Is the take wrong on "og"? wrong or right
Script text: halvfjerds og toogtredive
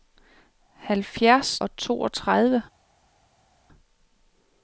right